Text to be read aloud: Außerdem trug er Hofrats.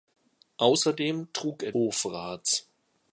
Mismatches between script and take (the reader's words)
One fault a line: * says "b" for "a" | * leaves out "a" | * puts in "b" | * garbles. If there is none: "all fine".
all fine